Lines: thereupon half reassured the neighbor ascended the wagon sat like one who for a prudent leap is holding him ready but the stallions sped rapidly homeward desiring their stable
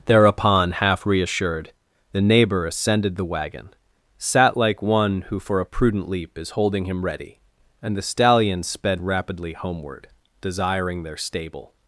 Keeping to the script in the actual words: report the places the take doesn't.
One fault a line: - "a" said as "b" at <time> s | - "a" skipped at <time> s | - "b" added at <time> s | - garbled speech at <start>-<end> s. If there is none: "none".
- "but" said as "and" at 7.8 s